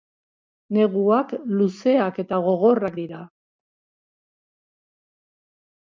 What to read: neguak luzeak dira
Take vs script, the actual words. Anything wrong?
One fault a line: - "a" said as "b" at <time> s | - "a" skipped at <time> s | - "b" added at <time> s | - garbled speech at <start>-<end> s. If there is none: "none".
- "eta gogorrak" added at 2.2 s